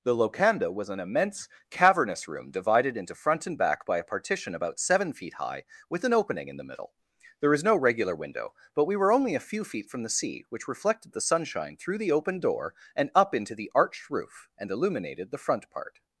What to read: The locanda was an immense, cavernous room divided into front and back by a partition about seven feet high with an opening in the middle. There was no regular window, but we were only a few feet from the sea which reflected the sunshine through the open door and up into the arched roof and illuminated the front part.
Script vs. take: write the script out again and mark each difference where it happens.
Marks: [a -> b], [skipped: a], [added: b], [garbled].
The locanda was an immense, cavernous room divided into front and back by a partition about seven feet high with an opening in the middle. There was no regular window, but we were only a few feet from the sea which reflected the sunshine through the open door and up into the arched roof and illuminated the front part.